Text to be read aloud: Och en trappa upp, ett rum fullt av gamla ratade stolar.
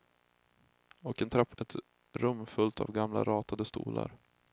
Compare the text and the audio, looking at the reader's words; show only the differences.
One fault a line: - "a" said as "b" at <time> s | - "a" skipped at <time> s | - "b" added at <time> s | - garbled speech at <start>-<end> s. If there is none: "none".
- "upp" skipped at 1.6 s